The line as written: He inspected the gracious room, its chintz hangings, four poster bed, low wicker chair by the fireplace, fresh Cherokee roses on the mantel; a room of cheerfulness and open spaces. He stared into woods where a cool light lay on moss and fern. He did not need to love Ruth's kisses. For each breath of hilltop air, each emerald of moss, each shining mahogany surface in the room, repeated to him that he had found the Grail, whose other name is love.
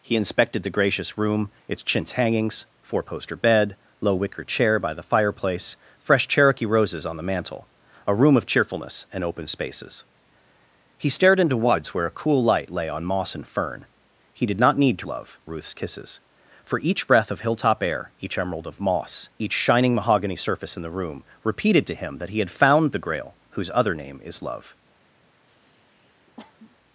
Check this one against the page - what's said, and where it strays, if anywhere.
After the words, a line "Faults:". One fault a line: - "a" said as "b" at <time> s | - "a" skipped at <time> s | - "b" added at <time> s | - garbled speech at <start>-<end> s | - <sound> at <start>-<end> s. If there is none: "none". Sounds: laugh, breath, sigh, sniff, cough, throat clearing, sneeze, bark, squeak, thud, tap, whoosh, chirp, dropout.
He inspected the gracious room, its chintz hangings, four poster bed, low wicker chair by the fireplace, fresh Cherokee roses on the mantel; a room of cheerfulness and open spaces. He stared into woods where a cool light lay on moss and fern. He did not need to love Ruth's kisses. For each breath of hilltop air, each emerald of moss, each shining mahogany surface in the room, repeated to him that he had found the Grail, whose other name is love.
Faults:
- sniff at 25.4-26.8 s